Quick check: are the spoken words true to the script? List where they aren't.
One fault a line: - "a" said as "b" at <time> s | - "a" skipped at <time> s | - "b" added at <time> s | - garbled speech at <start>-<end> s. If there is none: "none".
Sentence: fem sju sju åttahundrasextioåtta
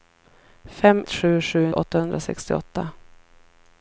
none